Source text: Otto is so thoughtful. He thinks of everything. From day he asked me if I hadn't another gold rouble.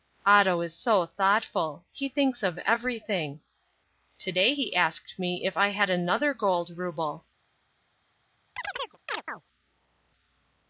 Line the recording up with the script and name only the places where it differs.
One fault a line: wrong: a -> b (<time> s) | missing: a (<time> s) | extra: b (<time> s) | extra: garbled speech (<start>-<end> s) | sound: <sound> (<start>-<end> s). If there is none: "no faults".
wrong: From -> To (4.2 s)
wrong: hadn't -> had (5.7 s)
sound: chirp (8.6-9.4 s)